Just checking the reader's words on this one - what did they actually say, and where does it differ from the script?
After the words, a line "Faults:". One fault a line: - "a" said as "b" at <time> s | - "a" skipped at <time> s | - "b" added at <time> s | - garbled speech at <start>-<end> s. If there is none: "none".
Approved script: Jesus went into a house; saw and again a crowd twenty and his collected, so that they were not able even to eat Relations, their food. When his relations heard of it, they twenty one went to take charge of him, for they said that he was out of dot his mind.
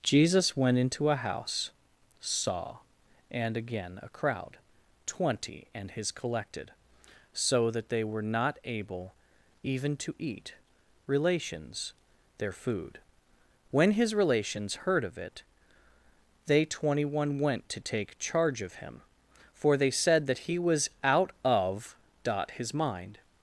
Jesus went into a house; saw and again a crowd twenty and his collected, so that they were not able even to eat Relations, their food. When his relations heard of it, they twenty one went to take charge of him, for they said that he was out of dot his mind.
Faults:
none